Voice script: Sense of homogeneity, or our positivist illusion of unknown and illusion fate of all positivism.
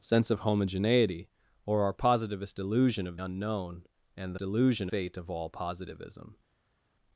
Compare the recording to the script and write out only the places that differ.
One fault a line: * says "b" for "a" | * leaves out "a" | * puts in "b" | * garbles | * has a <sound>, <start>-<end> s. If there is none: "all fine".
all fine